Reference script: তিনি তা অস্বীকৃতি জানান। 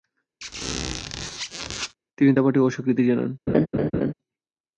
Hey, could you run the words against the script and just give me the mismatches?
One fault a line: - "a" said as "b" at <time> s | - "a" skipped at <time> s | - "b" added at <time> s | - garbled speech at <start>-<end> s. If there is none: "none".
- "পাঠে" added at 2.4 s